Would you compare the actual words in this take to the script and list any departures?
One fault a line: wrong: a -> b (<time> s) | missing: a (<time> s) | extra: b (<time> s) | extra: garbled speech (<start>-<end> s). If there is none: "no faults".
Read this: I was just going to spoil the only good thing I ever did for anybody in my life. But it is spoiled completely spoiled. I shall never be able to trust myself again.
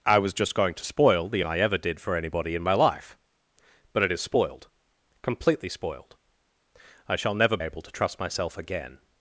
missing: only good thing (1.4 s)
missing: be (7.6 s)